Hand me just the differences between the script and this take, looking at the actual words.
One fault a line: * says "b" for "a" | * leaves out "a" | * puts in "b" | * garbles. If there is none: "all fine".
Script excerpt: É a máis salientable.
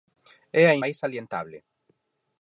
all fine